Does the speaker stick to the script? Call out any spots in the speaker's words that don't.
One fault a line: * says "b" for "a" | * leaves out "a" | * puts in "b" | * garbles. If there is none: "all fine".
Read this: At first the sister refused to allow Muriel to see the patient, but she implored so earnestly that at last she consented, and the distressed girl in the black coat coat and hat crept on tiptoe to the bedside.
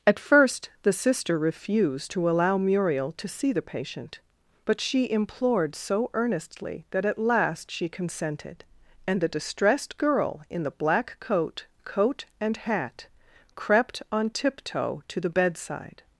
all fine